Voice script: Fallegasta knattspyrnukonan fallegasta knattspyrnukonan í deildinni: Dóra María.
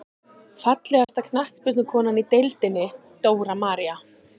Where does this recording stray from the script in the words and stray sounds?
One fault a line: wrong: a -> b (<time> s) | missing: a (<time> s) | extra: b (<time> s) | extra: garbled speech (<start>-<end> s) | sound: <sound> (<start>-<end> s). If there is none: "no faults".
sound: dropout (1.0-1.1 s)
missing: fallegasta knattspyrnukonan (2.2 s)